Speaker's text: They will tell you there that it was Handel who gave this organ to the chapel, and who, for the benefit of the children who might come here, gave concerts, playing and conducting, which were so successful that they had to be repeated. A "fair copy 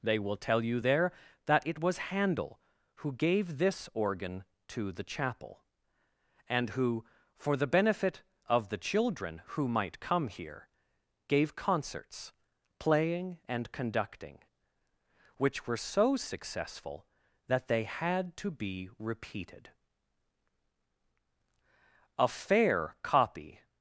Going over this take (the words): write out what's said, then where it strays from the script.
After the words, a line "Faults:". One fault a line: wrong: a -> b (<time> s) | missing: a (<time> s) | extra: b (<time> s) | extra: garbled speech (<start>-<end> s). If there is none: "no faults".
They will tell you there that it was Handel who gave this organ to the chapel, and who, for the benefit of the children who might come here, gave concerts, playing and conducting, which were so successful that they had to be repeated. A "fair copy
Faults:
no faults